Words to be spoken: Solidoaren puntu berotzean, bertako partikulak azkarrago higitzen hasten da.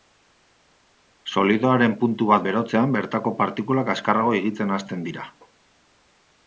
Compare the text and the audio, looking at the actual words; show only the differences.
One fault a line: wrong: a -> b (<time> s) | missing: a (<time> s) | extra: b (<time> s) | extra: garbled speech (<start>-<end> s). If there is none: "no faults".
extra: bat (2.3 s)
wrong: da -> dira (5.1 s)